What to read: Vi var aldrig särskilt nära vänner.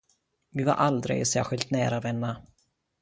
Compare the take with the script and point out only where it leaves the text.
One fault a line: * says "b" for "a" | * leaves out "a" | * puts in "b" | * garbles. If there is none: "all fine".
all fine